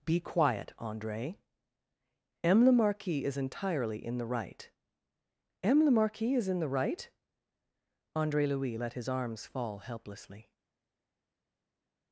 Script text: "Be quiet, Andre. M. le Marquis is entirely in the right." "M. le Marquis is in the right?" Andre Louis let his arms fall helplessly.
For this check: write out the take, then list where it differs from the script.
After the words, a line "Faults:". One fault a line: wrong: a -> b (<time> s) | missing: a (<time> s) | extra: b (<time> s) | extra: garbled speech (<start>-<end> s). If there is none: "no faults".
"Be quiet, Andre. M. le Marquis is entirely in the right." "M. le Marquis is in the right?" Andre Louis let his arms fall helplessly.
Faults:
no faults